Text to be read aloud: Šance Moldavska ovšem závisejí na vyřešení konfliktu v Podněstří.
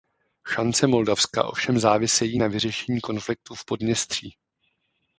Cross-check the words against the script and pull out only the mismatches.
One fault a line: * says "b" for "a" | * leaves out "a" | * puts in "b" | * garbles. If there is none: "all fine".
all fine